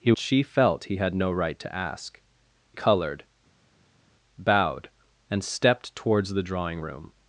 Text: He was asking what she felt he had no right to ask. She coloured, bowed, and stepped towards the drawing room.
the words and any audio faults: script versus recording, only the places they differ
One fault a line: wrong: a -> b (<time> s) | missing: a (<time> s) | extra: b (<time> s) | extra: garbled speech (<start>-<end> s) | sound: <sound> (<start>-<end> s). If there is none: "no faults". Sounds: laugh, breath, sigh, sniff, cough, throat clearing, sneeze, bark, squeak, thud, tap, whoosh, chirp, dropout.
missing: was asking what (0.1 s)
missing: She (2.2 s)